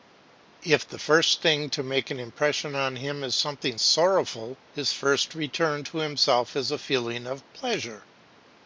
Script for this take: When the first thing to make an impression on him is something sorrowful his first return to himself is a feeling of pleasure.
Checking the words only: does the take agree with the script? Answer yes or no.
no